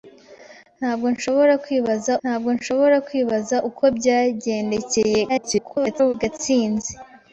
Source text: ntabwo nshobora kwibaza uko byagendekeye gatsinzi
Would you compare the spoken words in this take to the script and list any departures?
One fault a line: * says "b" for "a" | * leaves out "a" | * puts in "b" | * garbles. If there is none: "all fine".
* puts in "ntabwo nshobora kwibaza"
* garbles